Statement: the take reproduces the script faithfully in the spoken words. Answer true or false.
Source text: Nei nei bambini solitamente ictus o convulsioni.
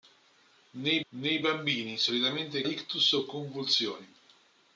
true